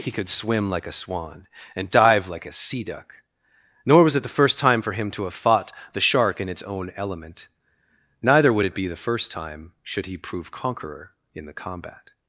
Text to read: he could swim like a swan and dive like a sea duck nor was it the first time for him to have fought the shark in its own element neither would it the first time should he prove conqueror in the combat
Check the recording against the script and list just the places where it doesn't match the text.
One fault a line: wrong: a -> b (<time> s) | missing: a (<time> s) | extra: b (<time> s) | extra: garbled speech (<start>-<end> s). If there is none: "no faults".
extra: be (8.7 s)